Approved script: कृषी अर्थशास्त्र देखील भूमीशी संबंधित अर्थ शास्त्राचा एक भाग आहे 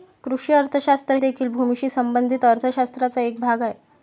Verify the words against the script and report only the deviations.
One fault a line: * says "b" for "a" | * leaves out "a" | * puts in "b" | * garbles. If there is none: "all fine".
all fine